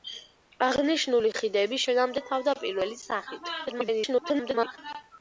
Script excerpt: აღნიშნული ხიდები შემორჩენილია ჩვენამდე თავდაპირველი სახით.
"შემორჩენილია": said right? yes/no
no